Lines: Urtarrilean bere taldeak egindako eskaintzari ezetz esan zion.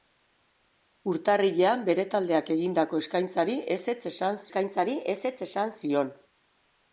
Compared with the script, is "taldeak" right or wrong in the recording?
right